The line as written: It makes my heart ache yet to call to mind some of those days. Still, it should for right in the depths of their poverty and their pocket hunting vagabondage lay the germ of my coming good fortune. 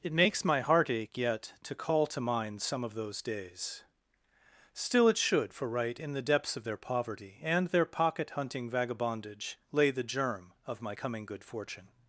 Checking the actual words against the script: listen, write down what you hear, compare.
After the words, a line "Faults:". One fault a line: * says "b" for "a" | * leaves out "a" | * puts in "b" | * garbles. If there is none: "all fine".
It makes my heart ache yet to call to mind some of those days. Still, it should for right in the depths of their poverty and their pocket hunting vagabondage lay the germ of my coming good fortune.
Faults:
all fine